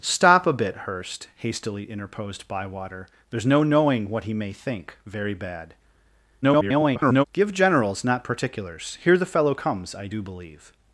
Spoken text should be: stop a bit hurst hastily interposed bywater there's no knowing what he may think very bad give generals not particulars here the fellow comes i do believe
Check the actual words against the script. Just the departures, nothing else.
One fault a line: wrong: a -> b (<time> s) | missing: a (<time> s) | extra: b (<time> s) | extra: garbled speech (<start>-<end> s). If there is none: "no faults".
extra: garbled speech (6.4-7.2 s)